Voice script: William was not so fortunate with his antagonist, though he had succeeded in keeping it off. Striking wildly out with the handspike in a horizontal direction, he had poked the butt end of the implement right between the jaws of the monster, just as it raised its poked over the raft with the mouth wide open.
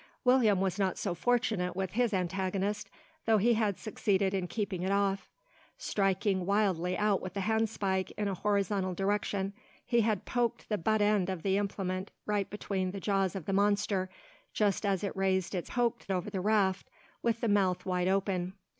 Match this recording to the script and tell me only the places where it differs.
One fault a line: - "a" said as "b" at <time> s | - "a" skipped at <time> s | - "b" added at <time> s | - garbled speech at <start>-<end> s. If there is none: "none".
none